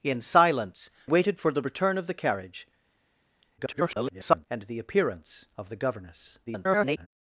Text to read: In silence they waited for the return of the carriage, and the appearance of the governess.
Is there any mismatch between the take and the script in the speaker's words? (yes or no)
yes